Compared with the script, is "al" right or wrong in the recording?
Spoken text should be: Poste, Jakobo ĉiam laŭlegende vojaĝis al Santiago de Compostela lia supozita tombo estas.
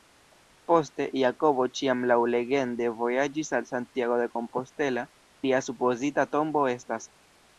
right